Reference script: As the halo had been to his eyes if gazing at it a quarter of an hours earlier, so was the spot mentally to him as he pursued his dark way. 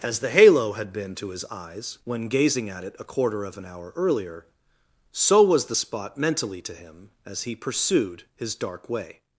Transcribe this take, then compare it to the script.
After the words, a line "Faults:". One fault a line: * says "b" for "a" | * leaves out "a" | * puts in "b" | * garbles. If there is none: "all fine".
As the halo had been to his eyes when gazing at it a quarter of an hour earlier, so was the spot mentally to him as he pursued his dark way.
Faults:
* says "when" for "if"
* says "hour" for "hours"